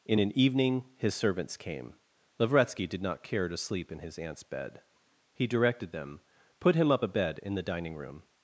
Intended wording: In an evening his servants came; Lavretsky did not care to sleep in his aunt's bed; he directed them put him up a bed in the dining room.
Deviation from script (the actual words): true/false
false